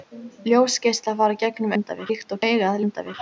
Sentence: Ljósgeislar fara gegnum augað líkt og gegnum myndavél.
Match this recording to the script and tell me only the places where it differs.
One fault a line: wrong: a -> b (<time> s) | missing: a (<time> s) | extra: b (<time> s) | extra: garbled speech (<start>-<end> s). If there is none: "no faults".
wrong: augað -> myndavél (1.7 s)
wrong: gegnum -> augað (2.5 s)